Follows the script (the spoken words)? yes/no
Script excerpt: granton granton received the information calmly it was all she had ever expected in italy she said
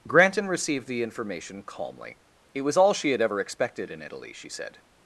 no